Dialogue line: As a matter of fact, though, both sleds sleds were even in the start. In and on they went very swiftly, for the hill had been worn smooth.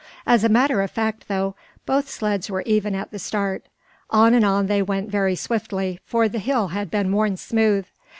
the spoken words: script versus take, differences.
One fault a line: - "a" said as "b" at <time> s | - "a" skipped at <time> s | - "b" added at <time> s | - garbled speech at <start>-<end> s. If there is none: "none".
- "sleds" skipped at 2.5 s
- "in" said as "at" at 3.0 s
- "In" said as "On" at 4.1 s